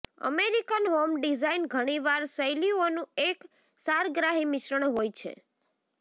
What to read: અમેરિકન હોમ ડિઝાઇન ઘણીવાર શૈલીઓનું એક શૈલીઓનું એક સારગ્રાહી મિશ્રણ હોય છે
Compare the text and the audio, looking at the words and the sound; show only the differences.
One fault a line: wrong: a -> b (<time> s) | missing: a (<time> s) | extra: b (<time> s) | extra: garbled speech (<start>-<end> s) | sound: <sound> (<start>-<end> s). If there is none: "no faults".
missing: શૈલીઓનું એક (3.5 s)